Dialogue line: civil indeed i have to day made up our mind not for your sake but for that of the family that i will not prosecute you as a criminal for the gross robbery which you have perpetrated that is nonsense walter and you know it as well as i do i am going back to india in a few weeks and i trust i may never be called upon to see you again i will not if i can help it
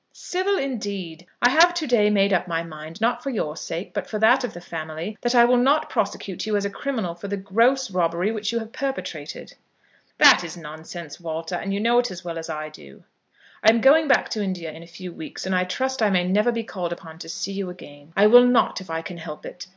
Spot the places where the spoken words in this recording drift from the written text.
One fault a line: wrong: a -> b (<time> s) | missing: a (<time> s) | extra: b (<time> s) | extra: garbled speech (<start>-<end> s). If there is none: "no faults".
wrong: our -> my (2.5 s)